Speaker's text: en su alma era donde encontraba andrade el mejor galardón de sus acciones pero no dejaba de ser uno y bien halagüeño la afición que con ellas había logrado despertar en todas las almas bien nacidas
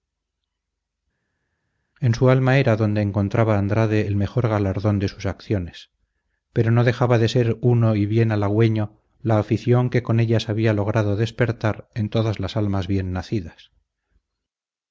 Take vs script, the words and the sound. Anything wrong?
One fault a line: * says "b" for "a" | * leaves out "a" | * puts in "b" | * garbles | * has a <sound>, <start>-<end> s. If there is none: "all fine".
all fine